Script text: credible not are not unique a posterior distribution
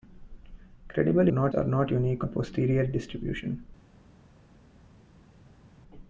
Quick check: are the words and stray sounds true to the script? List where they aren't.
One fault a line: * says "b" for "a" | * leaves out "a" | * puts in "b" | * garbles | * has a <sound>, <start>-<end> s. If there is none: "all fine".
all fine